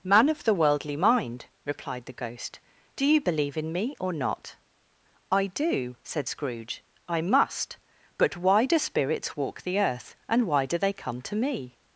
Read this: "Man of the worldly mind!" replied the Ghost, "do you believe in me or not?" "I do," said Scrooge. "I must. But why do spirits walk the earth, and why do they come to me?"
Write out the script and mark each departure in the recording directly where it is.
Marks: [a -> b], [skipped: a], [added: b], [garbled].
"Man of the worldly mind!" replied the Ghost, "do you believe in me or not?" "I do," said Scrooge. "I must. But why do spirits walk the earth, and why do they come to me?"